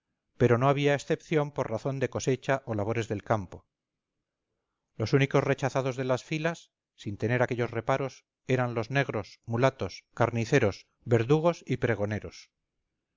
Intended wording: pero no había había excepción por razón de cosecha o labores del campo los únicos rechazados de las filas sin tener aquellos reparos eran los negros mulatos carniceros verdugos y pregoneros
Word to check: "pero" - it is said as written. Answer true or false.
true